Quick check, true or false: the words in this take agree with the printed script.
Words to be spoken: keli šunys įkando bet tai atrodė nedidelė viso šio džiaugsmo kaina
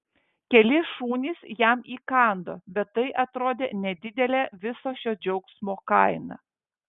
false